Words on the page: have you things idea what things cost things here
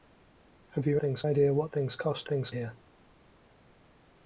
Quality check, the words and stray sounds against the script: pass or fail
pass